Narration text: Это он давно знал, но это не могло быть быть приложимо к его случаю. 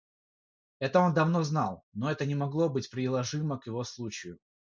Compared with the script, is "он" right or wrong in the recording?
right